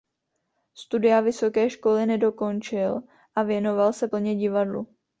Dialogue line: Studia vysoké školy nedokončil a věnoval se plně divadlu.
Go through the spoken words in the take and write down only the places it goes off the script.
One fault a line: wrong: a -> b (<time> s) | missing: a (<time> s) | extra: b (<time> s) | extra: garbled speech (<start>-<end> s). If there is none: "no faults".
no faults